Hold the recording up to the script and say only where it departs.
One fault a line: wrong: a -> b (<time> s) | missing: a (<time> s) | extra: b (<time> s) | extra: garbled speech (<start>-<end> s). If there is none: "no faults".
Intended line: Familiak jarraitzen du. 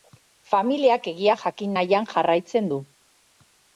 extra: egia jakin nahian (1.1 s)